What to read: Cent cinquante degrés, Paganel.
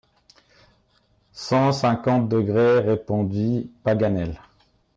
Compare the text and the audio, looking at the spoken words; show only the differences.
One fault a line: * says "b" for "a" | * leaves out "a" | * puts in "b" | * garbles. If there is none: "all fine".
* puts in "répondit"